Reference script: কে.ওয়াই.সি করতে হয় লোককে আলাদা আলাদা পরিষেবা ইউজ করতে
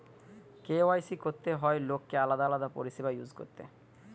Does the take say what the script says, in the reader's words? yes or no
yes